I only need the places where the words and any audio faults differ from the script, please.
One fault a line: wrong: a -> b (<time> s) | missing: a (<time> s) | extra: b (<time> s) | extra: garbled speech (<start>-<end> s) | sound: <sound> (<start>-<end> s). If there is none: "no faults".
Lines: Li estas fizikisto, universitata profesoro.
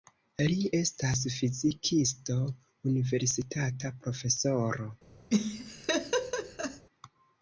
sound: laugh (5.3-6.8 s)